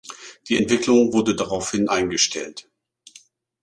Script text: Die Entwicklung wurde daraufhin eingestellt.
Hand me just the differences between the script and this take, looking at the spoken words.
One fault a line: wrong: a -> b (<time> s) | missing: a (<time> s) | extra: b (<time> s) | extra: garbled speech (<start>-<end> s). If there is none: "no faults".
no faults